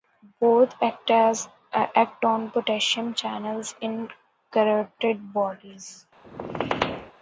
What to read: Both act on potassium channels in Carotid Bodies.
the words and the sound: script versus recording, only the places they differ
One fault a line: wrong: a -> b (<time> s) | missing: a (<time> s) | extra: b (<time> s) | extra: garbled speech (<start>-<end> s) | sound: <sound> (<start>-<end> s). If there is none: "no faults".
sound: squeak (6.2-7.1 s)